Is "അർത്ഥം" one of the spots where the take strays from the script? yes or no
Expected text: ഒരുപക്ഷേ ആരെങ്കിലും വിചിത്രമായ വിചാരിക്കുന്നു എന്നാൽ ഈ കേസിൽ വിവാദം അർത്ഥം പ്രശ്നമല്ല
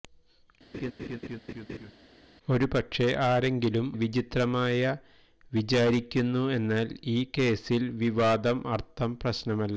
no